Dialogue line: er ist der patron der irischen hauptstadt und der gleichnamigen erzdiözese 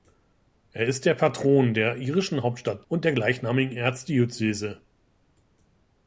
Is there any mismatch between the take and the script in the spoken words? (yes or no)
no